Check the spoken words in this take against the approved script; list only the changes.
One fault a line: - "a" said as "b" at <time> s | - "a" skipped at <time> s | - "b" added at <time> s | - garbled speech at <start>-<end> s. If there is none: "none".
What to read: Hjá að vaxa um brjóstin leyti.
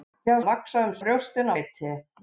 none